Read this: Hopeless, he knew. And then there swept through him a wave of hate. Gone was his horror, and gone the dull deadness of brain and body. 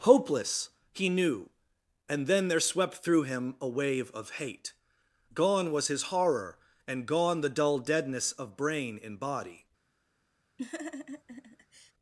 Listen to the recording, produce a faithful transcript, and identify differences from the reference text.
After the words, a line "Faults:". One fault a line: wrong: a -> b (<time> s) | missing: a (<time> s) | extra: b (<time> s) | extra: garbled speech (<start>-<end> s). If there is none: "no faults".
Hopeless, he knew. And then there swept through him a wave of hate. Gone was his horror, and gone the dull deadness of brain and body.
Faults:
no faults